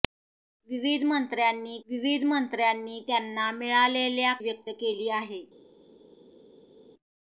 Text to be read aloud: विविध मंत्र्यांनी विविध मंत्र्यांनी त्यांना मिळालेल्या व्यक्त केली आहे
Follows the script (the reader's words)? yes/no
yes